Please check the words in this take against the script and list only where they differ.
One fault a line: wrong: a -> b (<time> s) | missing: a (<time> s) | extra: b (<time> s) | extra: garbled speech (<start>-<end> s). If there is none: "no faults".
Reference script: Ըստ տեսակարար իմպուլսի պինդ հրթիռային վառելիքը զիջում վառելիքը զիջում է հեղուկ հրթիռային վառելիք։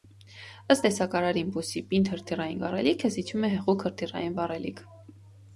missing: վառելիքը զիջում (3.5 s)